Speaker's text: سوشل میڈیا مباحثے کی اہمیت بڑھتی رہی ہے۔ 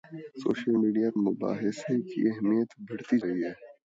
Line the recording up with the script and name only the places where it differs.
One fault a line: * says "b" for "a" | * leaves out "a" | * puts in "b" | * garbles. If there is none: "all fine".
all fine